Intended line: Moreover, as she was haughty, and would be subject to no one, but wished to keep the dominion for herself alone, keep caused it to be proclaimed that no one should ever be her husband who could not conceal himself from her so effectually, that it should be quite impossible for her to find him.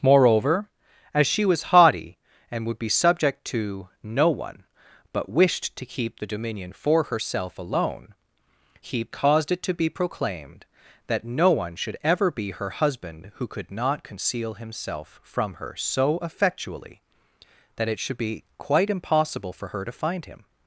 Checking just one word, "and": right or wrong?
right